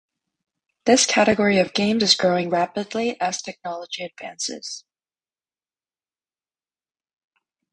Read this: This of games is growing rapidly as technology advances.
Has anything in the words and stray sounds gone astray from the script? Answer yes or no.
yes